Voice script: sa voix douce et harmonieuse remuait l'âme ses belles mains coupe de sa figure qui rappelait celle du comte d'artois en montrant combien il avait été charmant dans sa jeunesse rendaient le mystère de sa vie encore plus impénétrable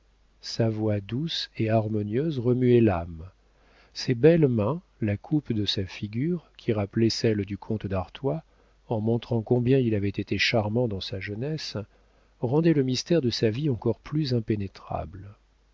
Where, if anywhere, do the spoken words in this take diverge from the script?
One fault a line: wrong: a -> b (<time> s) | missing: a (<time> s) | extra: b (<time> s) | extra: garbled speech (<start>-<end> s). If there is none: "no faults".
extra: la (5.0 s)